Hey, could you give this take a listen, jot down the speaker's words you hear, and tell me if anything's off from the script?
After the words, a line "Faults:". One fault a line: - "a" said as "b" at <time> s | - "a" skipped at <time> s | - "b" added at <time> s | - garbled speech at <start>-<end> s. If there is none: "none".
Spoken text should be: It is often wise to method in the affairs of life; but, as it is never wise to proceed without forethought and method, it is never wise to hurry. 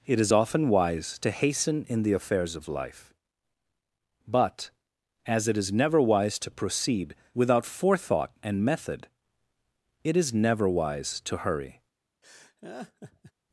It is often wise to hasten in the affairs of life; but, as it is never wise to proceed without forethought and method, it is never wise to hurry.
Faults:
- "method" said as "hasten" at 1.3 s